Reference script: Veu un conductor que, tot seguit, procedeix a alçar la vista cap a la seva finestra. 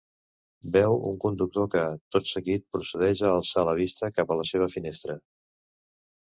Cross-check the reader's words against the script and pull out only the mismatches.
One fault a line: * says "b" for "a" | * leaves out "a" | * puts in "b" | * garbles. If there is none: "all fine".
all fine